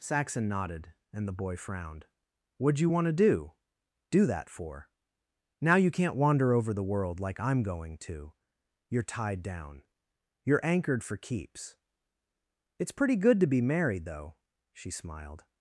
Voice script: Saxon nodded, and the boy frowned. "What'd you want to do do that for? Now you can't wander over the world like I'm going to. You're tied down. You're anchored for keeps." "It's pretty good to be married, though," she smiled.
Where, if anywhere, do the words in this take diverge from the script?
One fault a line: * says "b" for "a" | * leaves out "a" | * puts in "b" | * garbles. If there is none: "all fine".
all fine